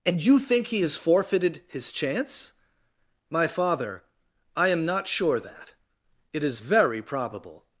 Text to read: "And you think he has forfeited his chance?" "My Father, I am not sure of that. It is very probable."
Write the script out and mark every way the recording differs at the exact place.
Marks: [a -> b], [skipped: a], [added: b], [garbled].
"And you think he has forfeited his chance?" "My Father, I am not sure [skipped: of] that. It is very probable."